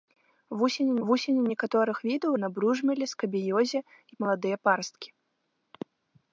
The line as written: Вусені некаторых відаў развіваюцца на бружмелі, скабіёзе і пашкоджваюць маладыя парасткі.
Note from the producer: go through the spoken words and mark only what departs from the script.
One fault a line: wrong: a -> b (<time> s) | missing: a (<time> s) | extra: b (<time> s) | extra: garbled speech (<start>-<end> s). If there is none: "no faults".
extra: вусені (1.1 s)
missing: развіваюцца (2.3 s)
missing: пашкоджваюць (4.2 s)